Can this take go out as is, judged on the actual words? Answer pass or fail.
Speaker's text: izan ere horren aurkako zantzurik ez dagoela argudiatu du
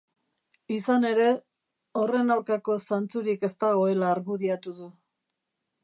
pass